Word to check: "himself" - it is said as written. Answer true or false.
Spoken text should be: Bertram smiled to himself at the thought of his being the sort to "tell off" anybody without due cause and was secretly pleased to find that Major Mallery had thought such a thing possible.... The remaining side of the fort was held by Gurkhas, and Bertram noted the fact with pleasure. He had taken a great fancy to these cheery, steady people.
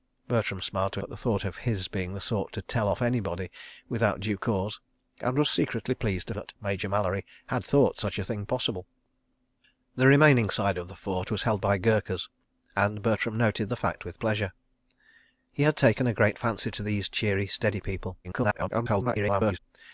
false